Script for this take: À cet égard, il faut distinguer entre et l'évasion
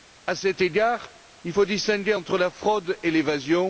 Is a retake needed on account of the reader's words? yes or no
yes